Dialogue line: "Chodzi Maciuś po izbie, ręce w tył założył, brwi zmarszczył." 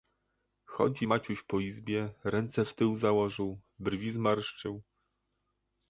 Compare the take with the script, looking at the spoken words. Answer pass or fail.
pass